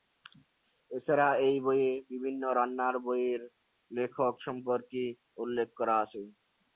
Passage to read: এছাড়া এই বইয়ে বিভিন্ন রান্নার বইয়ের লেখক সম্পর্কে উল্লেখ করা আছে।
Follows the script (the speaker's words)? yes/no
yes